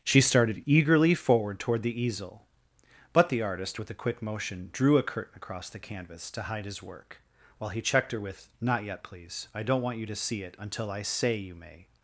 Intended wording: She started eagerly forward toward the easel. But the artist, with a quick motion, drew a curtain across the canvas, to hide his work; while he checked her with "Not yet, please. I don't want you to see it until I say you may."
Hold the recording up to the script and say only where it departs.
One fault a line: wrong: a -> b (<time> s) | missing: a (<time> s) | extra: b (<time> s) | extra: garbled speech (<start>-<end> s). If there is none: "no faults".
no faults